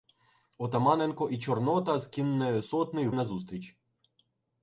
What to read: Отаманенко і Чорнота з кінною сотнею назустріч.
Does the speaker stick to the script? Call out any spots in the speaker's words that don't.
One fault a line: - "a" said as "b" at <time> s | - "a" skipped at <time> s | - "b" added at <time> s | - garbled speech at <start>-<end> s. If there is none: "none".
none